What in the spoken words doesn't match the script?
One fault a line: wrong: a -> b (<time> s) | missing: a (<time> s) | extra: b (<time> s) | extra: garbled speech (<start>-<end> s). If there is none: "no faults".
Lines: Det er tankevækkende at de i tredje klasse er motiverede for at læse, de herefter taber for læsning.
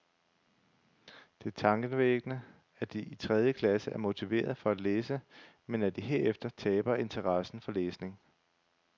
extra: men at (5.7 s)
extra: interessen (7.0 s)